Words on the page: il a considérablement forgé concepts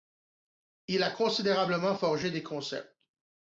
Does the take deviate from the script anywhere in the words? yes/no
yes